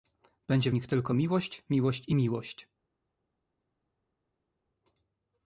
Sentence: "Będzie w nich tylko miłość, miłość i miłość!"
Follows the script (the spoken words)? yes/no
yes